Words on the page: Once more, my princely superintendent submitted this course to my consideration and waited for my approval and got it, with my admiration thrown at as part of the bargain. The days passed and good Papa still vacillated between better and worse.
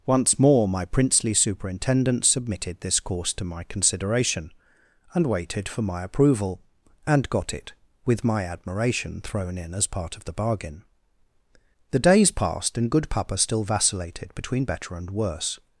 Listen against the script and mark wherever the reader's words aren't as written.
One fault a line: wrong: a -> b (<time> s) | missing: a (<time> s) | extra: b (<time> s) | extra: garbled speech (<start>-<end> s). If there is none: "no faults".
wrong: at -> in (9.6 s)